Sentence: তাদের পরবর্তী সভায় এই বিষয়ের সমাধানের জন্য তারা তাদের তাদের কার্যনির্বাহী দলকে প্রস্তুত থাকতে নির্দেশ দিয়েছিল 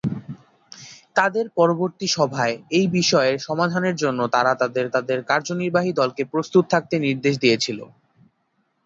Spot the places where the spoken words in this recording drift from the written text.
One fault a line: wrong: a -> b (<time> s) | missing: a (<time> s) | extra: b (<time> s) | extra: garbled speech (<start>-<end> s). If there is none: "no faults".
no faults